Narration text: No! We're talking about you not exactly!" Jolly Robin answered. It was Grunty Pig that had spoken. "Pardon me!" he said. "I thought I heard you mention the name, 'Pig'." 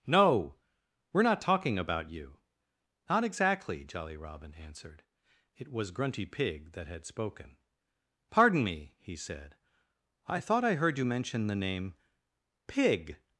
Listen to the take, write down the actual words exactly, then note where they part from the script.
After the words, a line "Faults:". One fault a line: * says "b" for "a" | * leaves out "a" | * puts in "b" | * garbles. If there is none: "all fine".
No! We're not talking about you not exactly!" Jolly Robin answered. It was Grunty Pig that had spoken. "Pardon me!" he said. "I thought I heard you mention the name, 'Pig'."
Faults:
* puts in "not"